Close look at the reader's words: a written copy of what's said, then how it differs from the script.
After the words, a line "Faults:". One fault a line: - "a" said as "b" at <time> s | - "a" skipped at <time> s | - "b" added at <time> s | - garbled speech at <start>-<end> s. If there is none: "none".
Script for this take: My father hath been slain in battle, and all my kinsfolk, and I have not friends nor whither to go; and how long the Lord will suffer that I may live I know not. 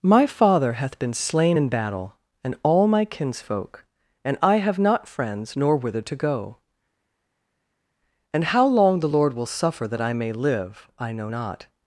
My father hath been slain in battle, and all my kinsfolk, and I have not friends nor whither to go; and how long the Lord will suffer that I may live I know not.
Faults:
none